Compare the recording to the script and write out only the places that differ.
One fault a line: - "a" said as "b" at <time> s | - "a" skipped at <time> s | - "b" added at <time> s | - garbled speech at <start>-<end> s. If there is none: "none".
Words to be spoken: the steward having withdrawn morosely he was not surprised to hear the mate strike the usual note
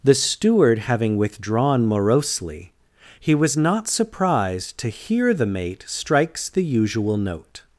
- "strike" said as "strikes" at 5.9 s